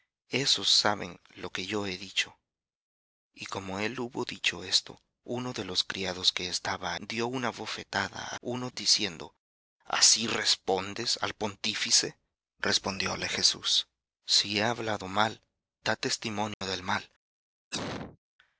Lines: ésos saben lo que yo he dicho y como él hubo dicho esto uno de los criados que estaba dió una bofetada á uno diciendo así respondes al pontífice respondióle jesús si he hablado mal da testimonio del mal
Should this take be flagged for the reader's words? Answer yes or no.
no